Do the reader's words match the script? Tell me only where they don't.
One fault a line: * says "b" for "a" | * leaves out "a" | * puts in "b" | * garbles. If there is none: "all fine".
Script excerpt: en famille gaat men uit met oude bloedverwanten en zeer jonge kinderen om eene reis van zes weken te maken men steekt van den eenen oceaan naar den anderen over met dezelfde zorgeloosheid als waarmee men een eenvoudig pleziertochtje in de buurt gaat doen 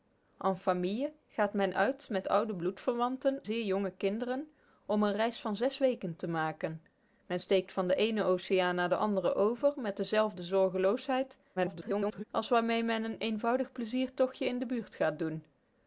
* leaves out "en"
* garbles